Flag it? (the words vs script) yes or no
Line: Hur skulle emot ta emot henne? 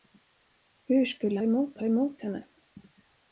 no